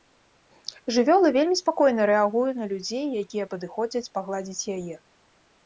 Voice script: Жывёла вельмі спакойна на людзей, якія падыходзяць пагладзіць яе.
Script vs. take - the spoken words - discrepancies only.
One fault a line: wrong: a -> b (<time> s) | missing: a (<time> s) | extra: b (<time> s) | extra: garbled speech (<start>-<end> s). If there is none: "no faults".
extra: рэагуе (2.1 s)